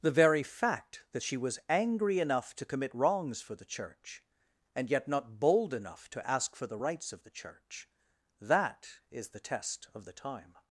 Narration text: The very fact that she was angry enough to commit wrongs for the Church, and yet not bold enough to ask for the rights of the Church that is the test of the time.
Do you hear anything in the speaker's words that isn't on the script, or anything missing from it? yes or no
no